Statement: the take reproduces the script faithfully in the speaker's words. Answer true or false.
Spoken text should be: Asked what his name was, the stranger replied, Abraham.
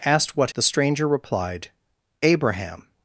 false